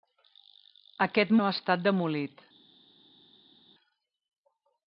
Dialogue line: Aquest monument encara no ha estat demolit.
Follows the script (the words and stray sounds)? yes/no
no